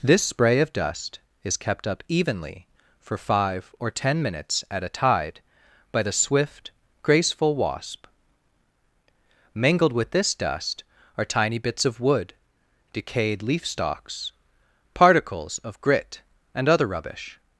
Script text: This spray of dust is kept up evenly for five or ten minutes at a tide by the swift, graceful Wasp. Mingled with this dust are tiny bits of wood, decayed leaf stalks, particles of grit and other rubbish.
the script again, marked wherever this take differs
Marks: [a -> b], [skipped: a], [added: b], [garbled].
This spray of dust is kept up evenly for five or ten minutes at a tide by the swift, graceful Wasp. Mingled with this dust are tiny bits of wood, decayed leaf stalks, particles of grit and other rubbish.